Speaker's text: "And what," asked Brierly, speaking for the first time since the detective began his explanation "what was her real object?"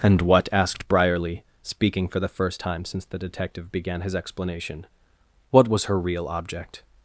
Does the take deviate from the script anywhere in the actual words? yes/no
no